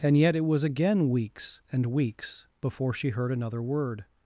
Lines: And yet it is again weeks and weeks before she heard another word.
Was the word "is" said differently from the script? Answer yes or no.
yes